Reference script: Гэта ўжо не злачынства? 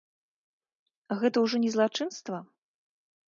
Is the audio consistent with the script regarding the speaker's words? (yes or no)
yes